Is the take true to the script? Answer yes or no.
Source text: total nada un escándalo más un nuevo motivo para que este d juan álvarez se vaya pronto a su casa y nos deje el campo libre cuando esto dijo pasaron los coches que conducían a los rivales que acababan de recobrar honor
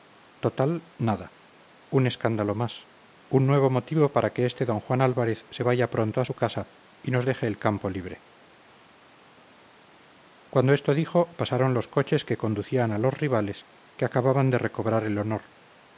no